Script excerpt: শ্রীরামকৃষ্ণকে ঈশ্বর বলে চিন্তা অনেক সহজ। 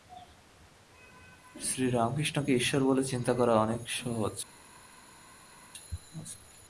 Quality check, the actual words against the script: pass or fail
fail